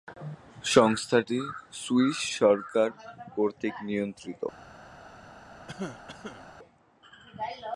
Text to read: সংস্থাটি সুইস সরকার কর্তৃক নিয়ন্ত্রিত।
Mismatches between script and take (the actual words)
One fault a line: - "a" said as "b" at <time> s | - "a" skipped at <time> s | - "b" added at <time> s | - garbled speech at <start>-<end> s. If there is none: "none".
none